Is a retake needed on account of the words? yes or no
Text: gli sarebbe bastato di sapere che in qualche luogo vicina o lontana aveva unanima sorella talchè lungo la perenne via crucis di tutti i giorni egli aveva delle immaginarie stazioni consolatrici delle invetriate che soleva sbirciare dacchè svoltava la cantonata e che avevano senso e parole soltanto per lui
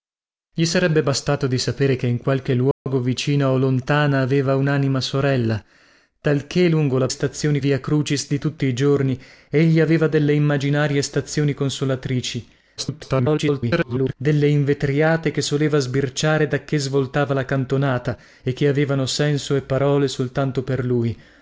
yes